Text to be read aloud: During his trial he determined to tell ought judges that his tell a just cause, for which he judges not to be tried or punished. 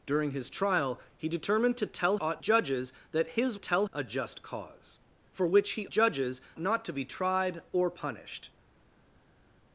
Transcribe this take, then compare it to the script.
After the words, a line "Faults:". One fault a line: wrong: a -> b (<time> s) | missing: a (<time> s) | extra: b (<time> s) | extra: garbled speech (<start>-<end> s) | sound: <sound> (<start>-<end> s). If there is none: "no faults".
During his trial he determined to tell ought judges that his tell a just cause, for which he judges not to be tried or punished.
Faults:
no faults